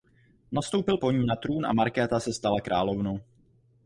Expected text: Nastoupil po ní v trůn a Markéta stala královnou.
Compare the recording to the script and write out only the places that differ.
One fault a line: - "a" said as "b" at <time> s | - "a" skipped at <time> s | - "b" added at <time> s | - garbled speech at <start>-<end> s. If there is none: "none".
- "v" said as "na" at 1.3 s
- "se" added at 2.2 s